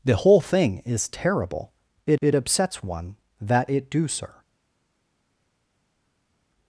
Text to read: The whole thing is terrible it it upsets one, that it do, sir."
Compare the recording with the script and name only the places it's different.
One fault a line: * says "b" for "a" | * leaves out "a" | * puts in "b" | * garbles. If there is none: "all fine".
all fine